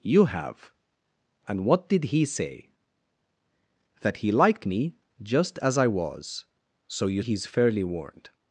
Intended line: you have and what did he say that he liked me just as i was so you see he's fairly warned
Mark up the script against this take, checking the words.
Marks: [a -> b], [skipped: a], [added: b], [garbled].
you have and what did he say that he liked me just as i was so you [skipped: see] he's fairly warned